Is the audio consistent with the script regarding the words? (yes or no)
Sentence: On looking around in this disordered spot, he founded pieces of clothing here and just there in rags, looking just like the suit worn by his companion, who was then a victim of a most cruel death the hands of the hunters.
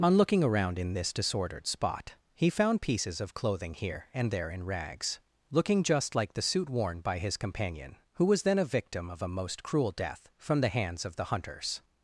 no